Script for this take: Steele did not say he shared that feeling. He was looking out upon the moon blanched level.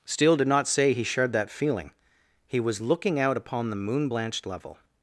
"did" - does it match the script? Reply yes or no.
yes